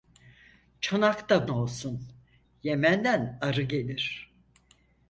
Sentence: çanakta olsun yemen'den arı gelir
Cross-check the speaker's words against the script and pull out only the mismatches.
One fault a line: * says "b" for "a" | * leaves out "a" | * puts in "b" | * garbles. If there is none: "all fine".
all fine